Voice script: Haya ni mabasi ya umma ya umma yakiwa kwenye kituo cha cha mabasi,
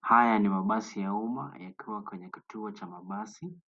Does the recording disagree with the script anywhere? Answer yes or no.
yes